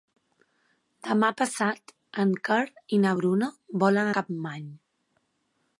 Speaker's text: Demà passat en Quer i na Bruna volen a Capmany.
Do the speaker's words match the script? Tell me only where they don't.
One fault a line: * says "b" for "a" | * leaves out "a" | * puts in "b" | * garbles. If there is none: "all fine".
all fine